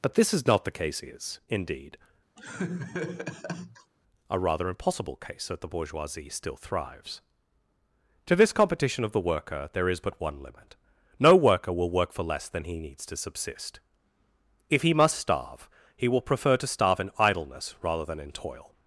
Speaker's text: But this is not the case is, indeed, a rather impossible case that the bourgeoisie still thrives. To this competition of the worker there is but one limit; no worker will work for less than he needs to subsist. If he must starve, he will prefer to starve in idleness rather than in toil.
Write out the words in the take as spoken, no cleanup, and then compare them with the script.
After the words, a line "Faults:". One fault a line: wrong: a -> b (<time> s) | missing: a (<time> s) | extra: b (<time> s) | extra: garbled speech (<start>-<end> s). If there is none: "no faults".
But this is not the case is, indeed, a rather impossible case that the bourgeoisie still thrives. To this competition of the worker there is but one limit; no worker will work for less than he needs to subsist. If he must starve, he will prefer to starve in idleness rather than in toil.
Faults:
no faults